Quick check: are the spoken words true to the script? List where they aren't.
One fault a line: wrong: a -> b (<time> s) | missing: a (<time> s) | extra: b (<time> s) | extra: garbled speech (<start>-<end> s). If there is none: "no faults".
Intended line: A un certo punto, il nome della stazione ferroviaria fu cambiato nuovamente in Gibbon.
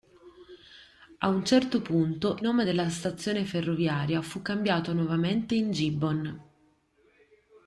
missing: il (2.4 s)